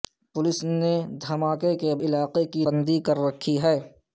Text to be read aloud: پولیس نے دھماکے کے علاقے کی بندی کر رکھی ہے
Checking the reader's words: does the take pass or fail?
pass